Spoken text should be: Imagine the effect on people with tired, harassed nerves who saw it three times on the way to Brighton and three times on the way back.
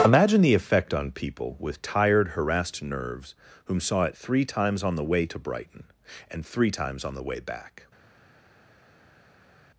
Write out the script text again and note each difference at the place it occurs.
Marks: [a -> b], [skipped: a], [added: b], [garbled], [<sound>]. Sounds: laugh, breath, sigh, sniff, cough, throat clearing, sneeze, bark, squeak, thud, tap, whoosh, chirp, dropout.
Imagine the effect on people with tired, harassed nerves [who -> whom] saw it three times on the way to Brighton and three times on the way back.